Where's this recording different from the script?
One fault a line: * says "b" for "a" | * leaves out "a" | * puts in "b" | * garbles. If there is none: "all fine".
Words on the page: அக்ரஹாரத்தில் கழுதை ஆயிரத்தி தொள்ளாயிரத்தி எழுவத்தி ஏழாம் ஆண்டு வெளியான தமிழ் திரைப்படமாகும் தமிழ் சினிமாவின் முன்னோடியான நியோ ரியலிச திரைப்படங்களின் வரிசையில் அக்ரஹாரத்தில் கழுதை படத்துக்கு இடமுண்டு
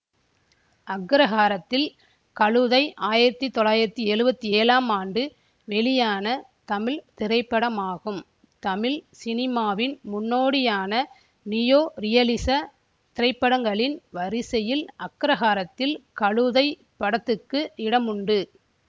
all fine